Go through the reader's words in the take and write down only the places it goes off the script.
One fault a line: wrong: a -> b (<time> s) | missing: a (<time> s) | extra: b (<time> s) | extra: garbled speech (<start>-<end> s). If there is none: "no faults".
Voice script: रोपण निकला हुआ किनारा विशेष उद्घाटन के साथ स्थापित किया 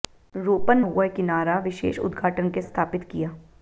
missing: निकला (0.8 s)
missing: साथ (2.6 s)